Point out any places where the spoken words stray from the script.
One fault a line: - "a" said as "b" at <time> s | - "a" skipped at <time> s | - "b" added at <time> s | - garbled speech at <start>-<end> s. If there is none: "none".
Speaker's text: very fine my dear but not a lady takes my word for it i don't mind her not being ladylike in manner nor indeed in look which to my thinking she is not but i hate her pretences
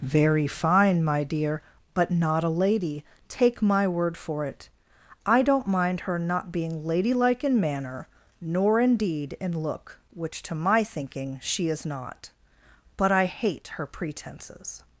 - "takes" said as "take" at 3.3 s